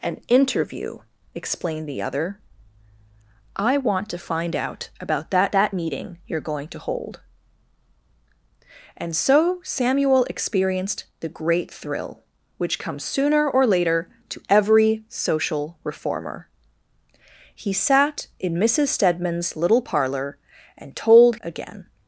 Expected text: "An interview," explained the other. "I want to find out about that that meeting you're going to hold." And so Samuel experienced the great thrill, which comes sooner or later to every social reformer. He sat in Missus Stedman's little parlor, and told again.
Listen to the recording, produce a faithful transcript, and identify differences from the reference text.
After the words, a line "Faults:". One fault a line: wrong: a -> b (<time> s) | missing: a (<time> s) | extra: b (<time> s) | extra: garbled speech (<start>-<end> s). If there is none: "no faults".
"An interview," explained the other. "I want to find out about that that meeting you're going to hold." And so Samuel experienced the great thrill, which comes sooner or later to every social reformer. He sat in Missus Stedman's little parlor, and told again.
Faults:
no faults